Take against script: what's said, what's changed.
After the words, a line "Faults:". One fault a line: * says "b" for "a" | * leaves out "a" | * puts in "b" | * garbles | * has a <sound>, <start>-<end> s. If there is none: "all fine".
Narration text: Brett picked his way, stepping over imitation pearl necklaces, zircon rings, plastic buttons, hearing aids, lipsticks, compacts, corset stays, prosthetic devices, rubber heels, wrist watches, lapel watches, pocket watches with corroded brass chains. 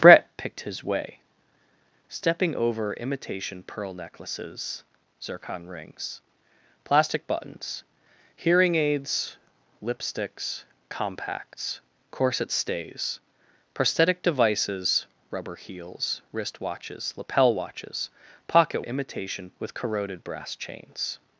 Brett picked his way, stepping over imitation pearl necklaces, zircon rings, plastic buttons, hearing aids, lipsticks, compacts, corset stays, prosthetic devices, rubber heels, wrist watches, lapel watches, pocket imitation with corroded brass chains.
Faults:
* says "imitation" for "watches"